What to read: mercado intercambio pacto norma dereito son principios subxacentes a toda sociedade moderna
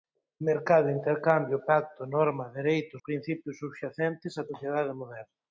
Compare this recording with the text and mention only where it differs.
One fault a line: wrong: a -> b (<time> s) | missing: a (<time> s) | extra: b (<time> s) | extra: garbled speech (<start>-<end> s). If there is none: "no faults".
missing: son (3.0 s)
missing: toda (4.4 s)